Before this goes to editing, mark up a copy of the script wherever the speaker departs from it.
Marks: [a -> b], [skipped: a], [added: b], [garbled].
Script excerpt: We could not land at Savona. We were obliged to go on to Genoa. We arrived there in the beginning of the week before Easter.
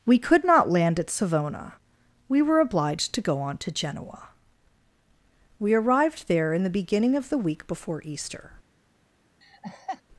We could not land at Savona. We were obliged to go on to Genoa. We arrived there in the beginning of the week before Easter.